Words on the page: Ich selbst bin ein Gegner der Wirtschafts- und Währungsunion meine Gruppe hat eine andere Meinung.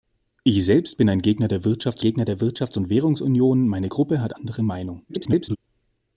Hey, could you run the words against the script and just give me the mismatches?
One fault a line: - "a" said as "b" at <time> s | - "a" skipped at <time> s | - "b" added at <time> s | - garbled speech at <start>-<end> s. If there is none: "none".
- "Gegner der Wirtschafts" added at 2.0 s
- "eine" skipped at 4.3 s
- garbled speech at 5.1-5.6 s